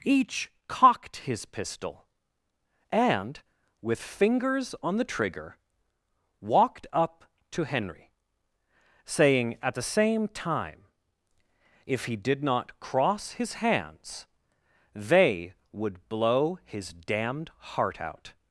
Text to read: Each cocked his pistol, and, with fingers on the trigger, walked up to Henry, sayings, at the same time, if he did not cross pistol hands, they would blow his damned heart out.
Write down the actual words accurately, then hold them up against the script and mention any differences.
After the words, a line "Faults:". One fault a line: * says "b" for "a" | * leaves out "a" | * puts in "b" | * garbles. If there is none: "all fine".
Each cocked his pistol, and, with fingers on the trigger, walked up to Henry, saying, at the same time, if he did not cross his hands, they would blow his damned heart out.
Faults:
* says "saying" for "sayings"
* says "his" for "pistol"